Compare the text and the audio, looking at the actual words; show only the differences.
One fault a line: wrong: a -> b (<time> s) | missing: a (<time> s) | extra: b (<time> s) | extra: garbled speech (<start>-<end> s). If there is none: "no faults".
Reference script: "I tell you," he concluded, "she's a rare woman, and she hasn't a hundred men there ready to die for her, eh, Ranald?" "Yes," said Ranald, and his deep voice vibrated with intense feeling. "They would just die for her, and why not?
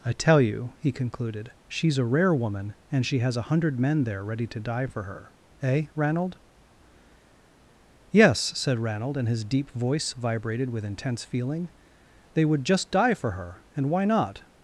wrong: hasn't -> has (3.2 s)